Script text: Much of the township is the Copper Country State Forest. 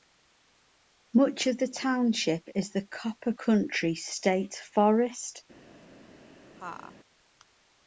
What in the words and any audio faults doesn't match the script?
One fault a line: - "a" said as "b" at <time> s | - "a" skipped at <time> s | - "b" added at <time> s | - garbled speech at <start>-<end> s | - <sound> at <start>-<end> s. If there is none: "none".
- laugh at 6.6-7.0 s